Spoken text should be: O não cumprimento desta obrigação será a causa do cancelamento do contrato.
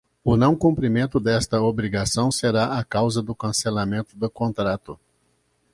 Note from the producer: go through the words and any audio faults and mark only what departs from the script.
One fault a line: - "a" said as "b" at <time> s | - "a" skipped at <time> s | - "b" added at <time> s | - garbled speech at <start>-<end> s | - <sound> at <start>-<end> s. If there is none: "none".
none